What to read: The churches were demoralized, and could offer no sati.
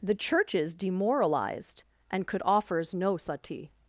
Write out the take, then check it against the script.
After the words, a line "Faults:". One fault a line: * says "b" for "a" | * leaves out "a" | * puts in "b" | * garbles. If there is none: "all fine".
The churches demoralized, and could offers no sati.
Faults:
* leaves out "were"
* says "offers" for "offer"